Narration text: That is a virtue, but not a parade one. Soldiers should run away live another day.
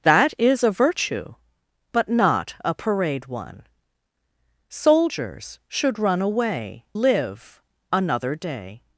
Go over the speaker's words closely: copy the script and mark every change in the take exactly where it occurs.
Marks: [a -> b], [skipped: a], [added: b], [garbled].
That is a virtue, but not a parade one. Soldiers should run away live another day.